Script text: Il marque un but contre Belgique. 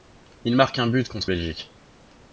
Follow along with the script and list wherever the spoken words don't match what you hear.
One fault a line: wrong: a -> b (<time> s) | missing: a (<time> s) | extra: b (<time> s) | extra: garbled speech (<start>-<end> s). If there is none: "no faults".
no faults